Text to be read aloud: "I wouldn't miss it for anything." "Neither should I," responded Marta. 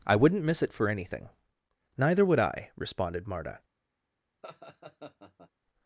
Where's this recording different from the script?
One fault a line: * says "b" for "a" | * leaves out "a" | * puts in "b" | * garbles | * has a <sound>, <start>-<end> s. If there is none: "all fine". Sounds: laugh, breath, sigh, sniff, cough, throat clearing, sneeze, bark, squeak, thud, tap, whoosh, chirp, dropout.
* says "would" for "should"
* has a laugh, 4.4-5.5 s